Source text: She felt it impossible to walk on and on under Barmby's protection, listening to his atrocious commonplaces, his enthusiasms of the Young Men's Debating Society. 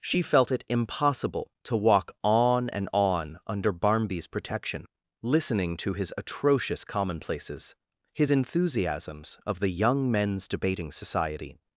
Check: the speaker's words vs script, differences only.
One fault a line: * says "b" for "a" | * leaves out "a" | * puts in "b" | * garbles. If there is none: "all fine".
all fine